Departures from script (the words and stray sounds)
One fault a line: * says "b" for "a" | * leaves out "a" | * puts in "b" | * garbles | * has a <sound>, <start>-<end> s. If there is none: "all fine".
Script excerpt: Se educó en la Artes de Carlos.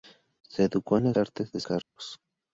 * has a dropout, 1.8-2.0 s